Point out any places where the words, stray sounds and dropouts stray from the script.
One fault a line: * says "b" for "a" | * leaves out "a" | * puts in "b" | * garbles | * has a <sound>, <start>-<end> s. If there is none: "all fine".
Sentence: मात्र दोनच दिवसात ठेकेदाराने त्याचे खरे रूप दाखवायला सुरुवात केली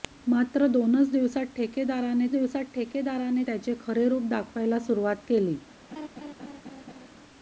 * puts in "दिवसात ठेकेदाराने"
* has a laugh, 5.9-7.1 s